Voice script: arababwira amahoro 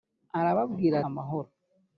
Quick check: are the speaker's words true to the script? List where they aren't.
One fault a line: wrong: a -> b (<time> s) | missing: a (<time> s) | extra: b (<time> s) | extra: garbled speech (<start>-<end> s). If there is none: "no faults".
no faults